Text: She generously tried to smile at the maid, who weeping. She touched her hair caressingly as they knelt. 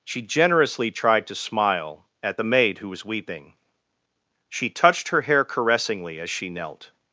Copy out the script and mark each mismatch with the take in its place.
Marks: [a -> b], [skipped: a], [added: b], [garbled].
She generously tried to smile at the maid, who [added: was] weeping. She touched her hair caressingly as [they -> she] knelt.